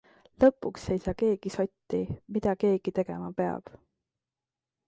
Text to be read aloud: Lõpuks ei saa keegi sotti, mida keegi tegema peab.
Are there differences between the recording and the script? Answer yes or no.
no